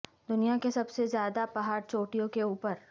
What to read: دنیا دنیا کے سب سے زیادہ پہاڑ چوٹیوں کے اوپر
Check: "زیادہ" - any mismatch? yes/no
no